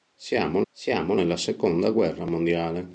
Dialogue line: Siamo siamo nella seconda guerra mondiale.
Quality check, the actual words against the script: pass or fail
pass